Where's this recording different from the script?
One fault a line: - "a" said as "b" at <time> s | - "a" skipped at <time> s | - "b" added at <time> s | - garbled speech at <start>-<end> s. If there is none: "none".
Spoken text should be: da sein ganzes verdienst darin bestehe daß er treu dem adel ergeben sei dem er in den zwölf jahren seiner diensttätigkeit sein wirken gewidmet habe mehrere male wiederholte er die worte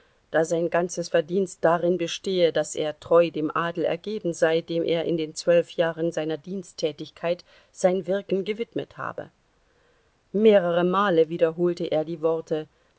none